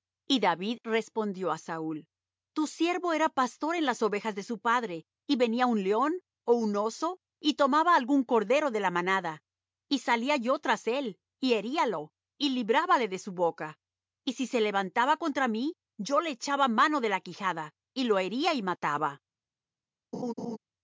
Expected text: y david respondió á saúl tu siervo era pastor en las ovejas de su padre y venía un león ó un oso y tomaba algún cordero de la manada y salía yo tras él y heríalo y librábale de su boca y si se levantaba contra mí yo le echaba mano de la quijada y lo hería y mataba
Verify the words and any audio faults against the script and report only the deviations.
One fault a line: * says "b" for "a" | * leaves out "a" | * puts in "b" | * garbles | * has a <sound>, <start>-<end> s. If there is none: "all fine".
* has a laugh, 20.1-20.6 s